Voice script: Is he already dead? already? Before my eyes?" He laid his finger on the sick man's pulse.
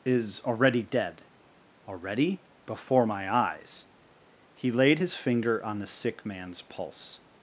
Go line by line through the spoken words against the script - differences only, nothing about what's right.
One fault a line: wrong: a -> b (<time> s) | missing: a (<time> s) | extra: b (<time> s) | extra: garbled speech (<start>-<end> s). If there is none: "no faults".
missing: he (0.4 s)